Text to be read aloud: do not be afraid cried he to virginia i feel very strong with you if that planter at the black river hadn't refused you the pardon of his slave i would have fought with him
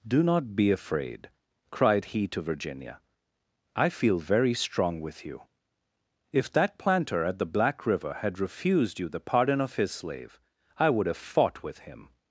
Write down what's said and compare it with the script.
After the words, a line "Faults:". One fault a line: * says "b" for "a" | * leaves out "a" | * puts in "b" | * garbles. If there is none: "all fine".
do not be afraid cried he to virginia i feel very strong with you if that planter at the black river had refused you the pardon of his slave i would have fought with him
Faults:
* says "had" for "hadn't"